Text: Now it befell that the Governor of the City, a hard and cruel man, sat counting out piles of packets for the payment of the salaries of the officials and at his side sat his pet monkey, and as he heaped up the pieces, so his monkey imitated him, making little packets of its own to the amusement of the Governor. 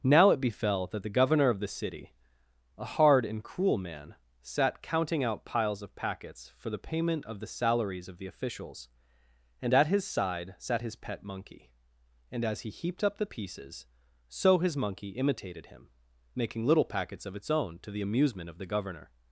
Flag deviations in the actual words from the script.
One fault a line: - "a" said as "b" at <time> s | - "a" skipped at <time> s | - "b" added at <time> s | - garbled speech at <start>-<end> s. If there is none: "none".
none